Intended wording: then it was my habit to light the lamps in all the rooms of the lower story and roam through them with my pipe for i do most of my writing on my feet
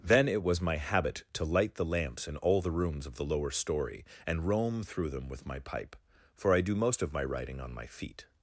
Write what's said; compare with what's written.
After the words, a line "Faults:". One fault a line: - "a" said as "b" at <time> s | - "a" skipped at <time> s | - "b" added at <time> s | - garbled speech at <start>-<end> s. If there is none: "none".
then it was my habit to light the lamps in all the rooms of the lower story and roam through them with my pipe for i do most of my writing on my feet
Faults:
none